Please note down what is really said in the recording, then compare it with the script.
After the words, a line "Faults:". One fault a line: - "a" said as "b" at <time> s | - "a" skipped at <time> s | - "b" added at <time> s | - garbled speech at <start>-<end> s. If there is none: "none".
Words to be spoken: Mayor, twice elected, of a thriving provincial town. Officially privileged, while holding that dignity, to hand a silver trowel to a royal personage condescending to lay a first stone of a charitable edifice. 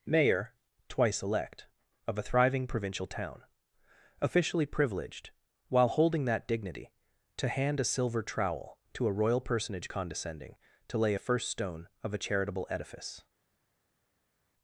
Mayor, twice elect, of a thriving provincial town. Officially privileged, while holding that dignity, to hand a silver trowel to a royal personage condescending to lay a first stone of a charitable edifice.
Faults:
- "elected" said as "elect" at 1.2 s